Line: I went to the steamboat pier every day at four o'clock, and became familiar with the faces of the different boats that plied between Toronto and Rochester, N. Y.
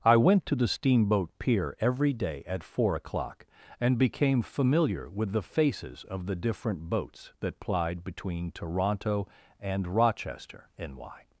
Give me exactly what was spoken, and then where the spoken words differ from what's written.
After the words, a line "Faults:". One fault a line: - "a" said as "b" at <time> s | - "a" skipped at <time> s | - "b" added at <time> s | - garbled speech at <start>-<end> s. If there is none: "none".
I went to the steamboat pier every day at four o'clock, and became familiar with the faces of the different boats that plied between Toronto and Rochester, N. Y.
Faults:
none